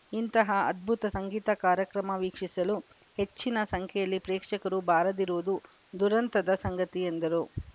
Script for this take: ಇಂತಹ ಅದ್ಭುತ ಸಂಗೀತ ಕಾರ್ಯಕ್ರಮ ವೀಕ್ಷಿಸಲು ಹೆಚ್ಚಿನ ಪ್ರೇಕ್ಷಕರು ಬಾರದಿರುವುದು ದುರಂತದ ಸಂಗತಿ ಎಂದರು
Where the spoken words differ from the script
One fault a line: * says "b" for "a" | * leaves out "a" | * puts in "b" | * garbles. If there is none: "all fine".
* puts in "ಸಂಖ್ಯೆಯಲ್ಲಿ"